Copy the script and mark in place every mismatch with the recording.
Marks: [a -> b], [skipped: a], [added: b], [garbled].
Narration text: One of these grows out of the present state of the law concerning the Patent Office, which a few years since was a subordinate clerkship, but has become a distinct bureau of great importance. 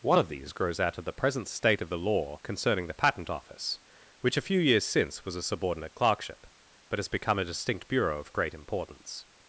One of these grows out of the present state of the law concerning the Patent Office, which a few years since was a subordinate clerkship, but has become a distinct bureau of great importance.